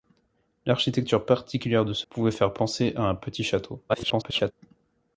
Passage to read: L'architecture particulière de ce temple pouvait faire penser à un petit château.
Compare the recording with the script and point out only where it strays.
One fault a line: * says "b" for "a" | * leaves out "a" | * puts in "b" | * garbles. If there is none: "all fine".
* leaves out "temple"
* garbles